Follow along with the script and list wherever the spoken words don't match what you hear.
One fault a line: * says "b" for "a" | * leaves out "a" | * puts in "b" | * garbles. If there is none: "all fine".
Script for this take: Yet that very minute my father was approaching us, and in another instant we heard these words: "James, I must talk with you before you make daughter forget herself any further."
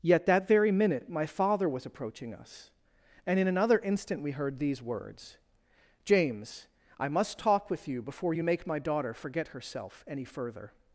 * puts in "my"